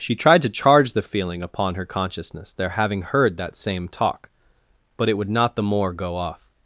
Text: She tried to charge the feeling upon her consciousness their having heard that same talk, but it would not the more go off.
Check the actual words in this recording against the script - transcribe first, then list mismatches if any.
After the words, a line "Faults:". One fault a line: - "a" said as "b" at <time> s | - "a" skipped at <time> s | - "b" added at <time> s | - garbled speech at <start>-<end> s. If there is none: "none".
She tried to charge the feeling upon her consciousness their having heard that same talk, but it would not the more go off.
Faults:
none